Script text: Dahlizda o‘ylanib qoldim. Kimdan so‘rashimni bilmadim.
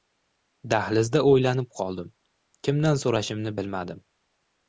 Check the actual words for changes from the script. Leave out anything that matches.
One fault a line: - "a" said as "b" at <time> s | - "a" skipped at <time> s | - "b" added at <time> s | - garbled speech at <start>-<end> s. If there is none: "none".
none